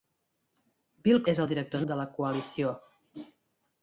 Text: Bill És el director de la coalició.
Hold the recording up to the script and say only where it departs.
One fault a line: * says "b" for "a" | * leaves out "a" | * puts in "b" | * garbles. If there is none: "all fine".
all fine